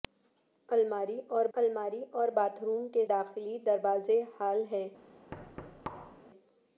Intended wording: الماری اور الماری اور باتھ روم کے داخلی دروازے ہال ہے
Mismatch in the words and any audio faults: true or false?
true